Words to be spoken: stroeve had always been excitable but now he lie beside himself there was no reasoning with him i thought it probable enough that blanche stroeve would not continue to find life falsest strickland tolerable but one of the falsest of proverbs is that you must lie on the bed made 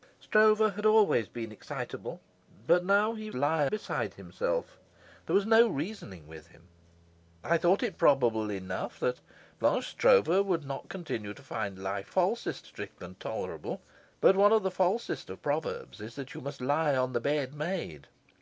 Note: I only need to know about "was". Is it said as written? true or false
true